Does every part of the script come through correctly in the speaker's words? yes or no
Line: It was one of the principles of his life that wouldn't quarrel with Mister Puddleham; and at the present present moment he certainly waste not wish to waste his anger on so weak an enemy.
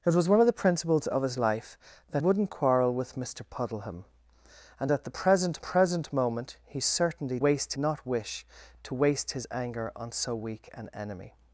yes